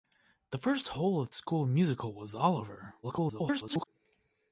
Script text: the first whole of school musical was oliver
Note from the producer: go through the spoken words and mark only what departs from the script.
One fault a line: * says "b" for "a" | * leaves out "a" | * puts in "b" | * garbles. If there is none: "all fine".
* garbles